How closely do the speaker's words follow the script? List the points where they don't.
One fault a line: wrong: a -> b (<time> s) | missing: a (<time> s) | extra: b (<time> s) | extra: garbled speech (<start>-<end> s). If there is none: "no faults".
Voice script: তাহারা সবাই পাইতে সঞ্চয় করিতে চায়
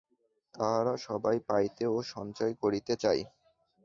extra: ও (1.9 s)